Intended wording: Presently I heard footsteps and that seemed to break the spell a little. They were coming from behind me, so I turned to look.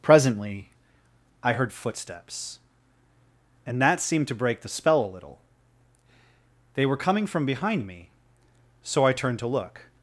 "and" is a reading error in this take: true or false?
false